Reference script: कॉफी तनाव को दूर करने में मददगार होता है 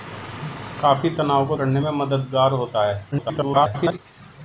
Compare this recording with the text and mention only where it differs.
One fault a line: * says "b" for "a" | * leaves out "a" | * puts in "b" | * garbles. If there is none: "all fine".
* leaves out "दूर"
* garbles